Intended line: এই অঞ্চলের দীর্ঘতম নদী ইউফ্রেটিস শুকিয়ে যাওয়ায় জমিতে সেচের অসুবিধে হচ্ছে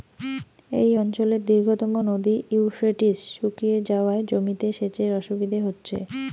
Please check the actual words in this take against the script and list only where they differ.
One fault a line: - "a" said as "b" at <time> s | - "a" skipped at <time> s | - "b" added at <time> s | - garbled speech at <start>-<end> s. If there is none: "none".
none